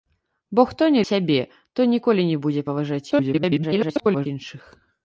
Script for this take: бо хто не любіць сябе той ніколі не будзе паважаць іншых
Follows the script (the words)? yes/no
no